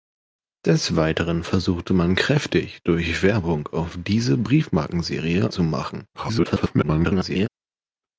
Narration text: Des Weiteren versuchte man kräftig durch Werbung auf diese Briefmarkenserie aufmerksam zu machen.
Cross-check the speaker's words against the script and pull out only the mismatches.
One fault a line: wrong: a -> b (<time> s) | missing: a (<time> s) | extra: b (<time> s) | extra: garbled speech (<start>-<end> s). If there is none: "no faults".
missing: aufmerksam (5.5 s)
extra: garbled speech (6.1-7.5 s)